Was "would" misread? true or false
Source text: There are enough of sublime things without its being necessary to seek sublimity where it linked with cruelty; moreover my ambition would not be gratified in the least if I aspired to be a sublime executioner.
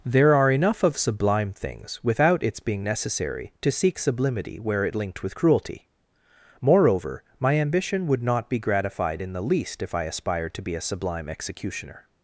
false